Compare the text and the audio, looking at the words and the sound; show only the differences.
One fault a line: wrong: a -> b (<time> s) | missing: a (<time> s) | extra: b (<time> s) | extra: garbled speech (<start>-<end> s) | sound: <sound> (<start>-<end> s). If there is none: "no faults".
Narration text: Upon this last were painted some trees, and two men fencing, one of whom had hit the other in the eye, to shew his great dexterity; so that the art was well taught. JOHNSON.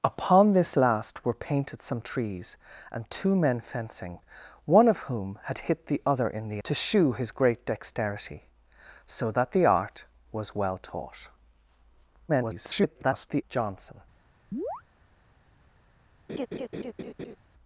missing: eye (6.6 s)
extra: garbled speech (12.3-13.4 s)
sound: chirp (14.5-14.8 s)
sound: laugh (16.3-17.4 s)